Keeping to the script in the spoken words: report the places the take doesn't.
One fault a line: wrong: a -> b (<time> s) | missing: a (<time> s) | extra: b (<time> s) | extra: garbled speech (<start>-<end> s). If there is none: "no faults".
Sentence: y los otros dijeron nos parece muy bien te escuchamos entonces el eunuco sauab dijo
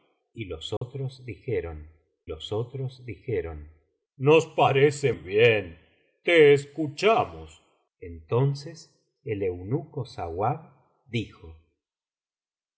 extra: los otros dijeron (2.2 s)
missing: muy (5.1 s)